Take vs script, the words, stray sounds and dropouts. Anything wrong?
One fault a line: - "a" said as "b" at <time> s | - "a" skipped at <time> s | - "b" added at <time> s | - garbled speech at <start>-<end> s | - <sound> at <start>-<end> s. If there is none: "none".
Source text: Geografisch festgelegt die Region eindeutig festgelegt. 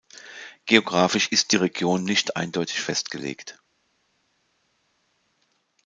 - "festgelegt" said as "ist" at 1.3 s
- "nicht" added at 2.0 s